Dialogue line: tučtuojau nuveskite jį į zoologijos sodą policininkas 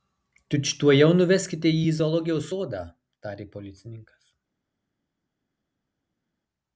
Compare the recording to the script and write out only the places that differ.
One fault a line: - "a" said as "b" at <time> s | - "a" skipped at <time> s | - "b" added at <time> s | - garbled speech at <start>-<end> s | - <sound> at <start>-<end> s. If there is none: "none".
- "tarė" added at 3.3 s